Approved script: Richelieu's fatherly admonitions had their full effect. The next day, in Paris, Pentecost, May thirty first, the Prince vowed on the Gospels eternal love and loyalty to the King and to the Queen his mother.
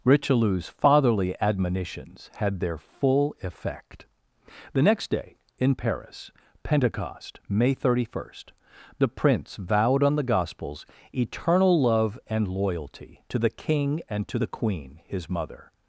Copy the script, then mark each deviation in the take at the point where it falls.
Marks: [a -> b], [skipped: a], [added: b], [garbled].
Richelieu's fatherly admonitions had their full effect. The next day, in Paris, Pentecost, May thirty first, the Prince vowed on the Gospels eternal love and loyalty to the King and to the Queen his mother.